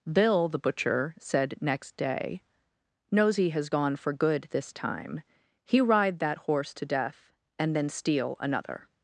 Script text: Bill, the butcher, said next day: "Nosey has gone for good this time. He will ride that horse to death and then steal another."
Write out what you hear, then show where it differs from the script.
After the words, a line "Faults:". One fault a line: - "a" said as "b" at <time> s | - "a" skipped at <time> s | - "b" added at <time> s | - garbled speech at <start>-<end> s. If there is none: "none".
Bill, the butcher, said next day: "Nosey has gone for good this time. He ride that horse to death and then steal another."
Faults:
- "will" skipped at 5.8 s